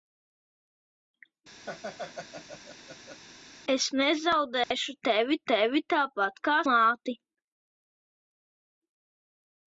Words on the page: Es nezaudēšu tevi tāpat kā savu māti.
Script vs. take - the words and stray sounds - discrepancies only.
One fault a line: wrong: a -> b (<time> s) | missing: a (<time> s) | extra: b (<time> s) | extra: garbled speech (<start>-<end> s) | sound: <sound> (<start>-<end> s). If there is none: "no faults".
sound: laugh (1.7-3.2 s)
sound: dropout (4.6-4.7 s)
extra: tevi (5.5 s)
missing: savu (6.5 s)